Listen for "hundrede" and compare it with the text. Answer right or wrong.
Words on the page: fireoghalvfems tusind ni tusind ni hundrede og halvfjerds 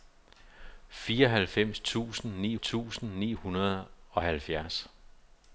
right